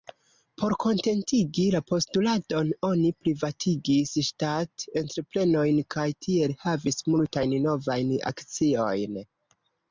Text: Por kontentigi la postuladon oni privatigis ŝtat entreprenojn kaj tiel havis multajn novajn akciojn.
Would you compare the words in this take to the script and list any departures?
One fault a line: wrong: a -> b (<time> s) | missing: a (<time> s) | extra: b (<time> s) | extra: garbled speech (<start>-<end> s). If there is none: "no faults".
no faults